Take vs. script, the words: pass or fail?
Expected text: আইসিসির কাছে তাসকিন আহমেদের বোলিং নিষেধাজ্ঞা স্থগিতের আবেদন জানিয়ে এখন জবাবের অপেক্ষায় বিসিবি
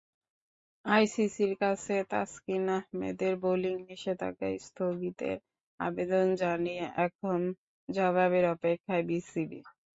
pass